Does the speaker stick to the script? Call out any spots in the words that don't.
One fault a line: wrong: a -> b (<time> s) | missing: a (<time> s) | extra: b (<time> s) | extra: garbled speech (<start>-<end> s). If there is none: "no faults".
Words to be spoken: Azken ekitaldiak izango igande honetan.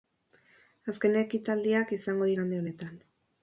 no faults